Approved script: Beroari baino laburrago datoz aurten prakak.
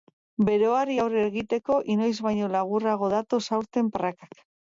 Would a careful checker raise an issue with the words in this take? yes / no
yes